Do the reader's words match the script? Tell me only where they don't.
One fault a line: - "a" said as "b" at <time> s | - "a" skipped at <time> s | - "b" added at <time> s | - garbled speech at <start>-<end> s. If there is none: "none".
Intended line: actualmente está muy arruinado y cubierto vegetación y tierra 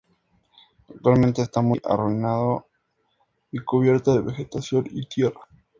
- "de" added at 4.1 s